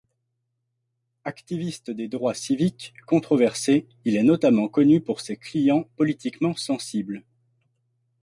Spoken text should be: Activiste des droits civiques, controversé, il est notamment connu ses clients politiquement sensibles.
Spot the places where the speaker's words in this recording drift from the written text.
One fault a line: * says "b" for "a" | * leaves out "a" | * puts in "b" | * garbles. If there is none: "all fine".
* puts in "pour"